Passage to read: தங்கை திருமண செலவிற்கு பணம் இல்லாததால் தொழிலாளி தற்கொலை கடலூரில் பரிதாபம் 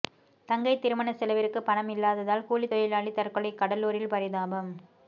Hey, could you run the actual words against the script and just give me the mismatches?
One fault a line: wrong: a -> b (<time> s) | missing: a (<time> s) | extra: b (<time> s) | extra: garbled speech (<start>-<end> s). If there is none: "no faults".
extra: கூலி (2.4 s)